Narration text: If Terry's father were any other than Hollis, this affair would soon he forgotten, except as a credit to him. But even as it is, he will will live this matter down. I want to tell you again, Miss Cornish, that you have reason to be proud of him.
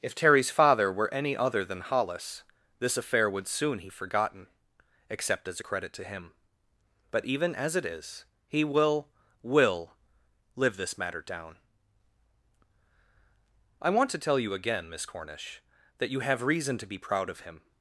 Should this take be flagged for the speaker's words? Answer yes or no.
no